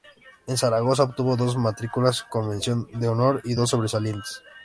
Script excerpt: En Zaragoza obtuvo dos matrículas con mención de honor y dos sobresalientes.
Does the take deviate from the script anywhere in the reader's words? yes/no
no